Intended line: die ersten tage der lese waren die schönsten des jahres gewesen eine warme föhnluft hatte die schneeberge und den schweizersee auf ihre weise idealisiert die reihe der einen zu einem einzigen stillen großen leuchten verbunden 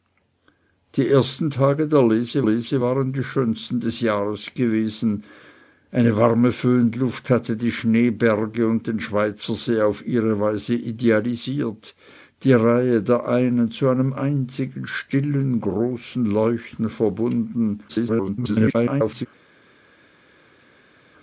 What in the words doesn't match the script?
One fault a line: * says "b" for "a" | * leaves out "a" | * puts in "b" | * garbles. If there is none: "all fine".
* puts in "lese"
* garbles